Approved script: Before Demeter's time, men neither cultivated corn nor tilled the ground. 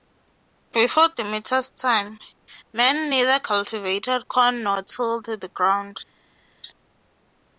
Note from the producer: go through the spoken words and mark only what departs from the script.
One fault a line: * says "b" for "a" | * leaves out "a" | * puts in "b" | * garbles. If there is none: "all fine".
all fine